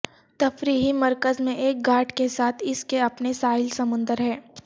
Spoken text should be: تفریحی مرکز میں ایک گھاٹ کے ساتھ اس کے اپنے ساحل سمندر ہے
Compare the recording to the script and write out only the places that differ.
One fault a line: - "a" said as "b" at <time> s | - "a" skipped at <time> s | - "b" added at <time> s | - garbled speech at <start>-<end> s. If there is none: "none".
none